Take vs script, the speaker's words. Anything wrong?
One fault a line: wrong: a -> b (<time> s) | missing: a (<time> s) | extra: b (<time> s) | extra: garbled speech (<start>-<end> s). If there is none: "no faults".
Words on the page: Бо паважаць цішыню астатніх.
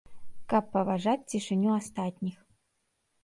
wrong: Бо -> Каб (0.5 s)